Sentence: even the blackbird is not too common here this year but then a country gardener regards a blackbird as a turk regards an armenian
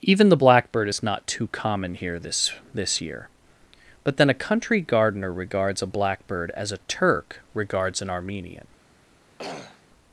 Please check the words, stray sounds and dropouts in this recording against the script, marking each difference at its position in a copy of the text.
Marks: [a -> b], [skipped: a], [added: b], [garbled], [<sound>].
even the blackbird is not too common here this [added: this] year but then a country gardener regards a blackbird as a turk regards an armenian [throat clearing]